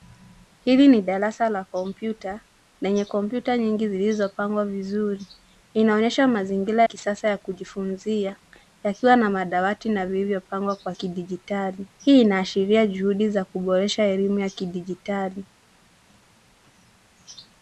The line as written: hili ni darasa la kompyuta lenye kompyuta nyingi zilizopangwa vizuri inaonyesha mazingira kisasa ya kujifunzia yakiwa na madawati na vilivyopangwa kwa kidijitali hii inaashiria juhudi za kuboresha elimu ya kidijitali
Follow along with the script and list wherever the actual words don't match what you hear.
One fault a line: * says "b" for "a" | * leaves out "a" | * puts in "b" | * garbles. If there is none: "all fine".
all fine